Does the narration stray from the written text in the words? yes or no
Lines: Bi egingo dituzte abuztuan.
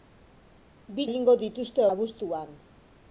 no